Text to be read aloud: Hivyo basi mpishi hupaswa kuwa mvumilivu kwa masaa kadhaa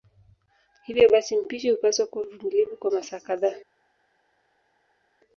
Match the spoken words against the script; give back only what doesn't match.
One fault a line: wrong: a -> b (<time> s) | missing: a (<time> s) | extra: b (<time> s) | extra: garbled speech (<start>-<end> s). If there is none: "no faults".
no faults